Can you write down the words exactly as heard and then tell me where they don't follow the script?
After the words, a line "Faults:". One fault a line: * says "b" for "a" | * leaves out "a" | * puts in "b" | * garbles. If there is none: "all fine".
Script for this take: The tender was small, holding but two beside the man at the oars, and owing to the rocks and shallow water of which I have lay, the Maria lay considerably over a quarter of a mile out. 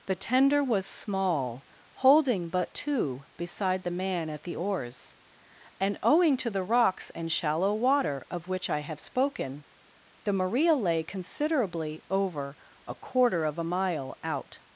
The tender was small, holding but two beside the man at the oars, and owing to the rocks and shallow water of which I have spoken, the Maria lay considerably over a quarter of a mile out.
Faults:
* says "spoken" for "lay"